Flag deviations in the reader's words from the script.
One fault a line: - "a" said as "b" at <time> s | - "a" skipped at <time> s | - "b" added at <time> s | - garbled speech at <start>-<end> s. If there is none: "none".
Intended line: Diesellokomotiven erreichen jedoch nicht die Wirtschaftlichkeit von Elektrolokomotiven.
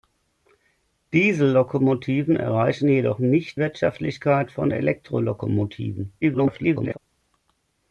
- "die" skipped at 3.6 s
- garbled speech at 6.2-7.0 s